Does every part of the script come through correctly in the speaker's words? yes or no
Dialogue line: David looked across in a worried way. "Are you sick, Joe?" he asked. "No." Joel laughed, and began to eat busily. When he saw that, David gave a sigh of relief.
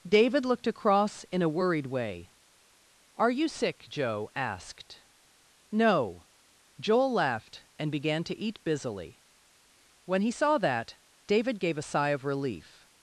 no